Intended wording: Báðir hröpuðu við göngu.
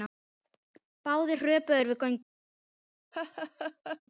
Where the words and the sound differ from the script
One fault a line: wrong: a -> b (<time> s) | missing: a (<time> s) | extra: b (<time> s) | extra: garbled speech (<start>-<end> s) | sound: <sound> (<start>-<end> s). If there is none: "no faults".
extra: þeir (1.8 s)
sound: laugh (3.1-4.0 s)